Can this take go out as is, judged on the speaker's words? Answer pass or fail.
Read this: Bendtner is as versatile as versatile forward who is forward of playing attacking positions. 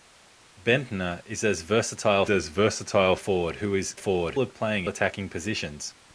pass